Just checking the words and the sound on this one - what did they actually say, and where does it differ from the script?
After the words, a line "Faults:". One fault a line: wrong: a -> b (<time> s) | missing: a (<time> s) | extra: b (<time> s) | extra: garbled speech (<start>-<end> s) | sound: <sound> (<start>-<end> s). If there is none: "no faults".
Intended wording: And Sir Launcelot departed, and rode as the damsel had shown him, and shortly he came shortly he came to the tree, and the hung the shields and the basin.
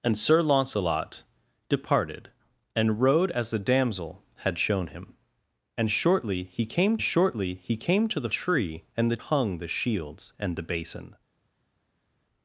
And Sir Launcelot departed, and rode as the damsel had shown him, and shortly he came shortly he came to the tree, and the hung the shields and the basin.
Faults:
no faults